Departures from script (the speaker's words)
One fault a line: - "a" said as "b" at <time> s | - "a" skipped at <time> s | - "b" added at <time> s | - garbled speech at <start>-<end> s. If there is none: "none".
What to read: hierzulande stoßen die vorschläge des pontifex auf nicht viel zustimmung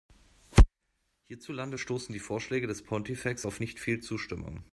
none